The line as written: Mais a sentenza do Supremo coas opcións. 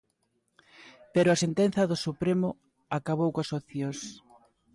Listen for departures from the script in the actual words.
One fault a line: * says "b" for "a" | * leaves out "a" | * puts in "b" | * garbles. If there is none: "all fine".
* says "Pero" for "Mais"
* puts in "acabou"